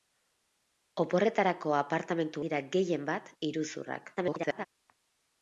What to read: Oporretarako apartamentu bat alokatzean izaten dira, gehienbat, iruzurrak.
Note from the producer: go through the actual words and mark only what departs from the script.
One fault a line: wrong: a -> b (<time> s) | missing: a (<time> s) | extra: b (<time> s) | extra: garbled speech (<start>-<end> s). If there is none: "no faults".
missing: bat alokatzean izaten (2.5 s)
extra: garbled speech (4.2-4.7 s)